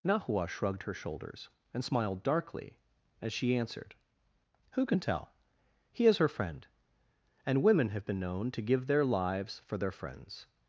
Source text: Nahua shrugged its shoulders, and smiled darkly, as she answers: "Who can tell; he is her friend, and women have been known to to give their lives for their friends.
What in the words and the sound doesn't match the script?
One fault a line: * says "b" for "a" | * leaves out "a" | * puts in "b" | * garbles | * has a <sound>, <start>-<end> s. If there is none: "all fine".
* says "her" for "its"
* says "answered" for "answers"
* leaves out "to"